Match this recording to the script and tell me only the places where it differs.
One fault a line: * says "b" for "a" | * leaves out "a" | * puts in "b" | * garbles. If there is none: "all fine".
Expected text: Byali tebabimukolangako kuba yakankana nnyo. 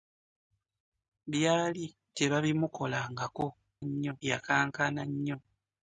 * says "nnyo" for "kuba"